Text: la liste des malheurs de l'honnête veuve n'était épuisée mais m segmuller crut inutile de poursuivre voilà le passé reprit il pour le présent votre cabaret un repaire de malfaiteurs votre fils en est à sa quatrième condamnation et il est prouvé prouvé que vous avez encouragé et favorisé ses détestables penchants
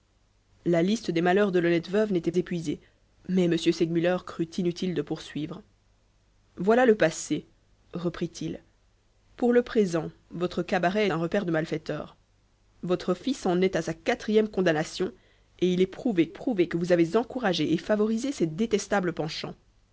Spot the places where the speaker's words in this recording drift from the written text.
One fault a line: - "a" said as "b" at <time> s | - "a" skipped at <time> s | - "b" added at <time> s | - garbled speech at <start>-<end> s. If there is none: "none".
none